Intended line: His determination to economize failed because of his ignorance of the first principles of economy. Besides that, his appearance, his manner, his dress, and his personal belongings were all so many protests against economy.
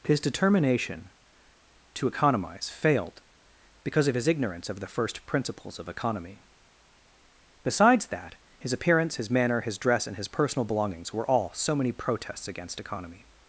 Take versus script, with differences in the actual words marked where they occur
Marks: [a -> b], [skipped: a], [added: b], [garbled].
His determination to economize failed because of his ignorance of the first principles of economy. Besides that, his appearance, his manner, his dress, and his personal belongings were all so many protests against economy.